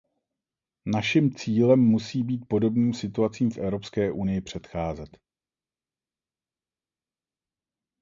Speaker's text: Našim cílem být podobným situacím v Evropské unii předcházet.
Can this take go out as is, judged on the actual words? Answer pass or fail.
fail